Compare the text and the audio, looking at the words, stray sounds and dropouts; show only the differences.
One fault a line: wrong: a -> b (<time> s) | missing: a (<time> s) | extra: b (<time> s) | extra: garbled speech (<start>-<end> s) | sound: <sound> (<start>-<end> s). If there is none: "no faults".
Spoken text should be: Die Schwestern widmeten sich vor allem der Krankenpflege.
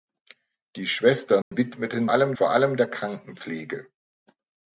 sound: dropout (1.4-1.5 s)
wrong: sich -> allem (2.1 s)